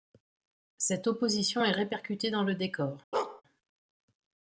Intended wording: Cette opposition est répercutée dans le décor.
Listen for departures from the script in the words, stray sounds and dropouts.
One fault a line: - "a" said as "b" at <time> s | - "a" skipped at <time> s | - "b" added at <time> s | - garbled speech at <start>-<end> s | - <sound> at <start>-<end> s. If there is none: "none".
- bark at 3.1-3.4 s